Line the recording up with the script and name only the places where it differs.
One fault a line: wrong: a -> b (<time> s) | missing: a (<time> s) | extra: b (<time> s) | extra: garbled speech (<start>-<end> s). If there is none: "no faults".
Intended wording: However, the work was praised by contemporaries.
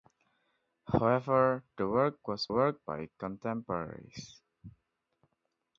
wrong: praised -> work (2.5 s)